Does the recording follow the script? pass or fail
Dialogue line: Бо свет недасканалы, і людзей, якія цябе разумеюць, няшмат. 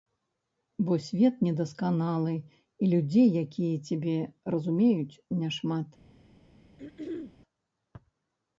pass